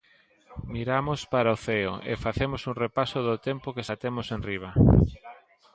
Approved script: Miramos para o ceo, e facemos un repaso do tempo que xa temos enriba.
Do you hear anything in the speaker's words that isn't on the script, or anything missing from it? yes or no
no